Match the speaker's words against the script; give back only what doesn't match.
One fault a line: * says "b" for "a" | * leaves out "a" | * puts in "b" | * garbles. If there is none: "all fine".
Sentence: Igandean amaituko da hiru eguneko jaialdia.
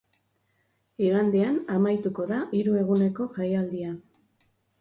all fine